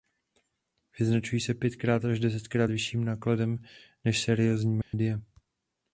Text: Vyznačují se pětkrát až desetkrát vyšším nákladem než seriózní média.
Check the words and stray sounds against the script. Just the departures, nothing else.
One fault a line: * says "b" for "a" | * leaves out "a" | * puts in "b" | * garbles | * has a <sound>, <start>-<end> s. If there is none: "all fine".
* has a dropout, 4.8-4.9 s